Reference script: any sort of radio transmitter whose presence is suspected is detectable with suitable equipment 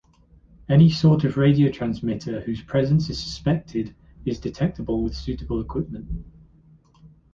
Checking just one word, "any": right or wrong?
right